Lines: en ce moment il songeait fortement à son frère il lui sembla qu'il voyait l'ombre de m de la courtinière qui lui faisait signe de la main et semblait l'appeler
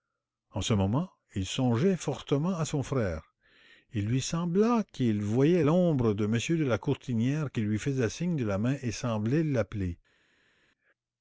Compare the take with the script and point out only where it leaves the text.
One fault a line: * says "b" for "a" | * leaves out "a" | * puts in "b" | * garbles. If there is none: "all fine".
all fine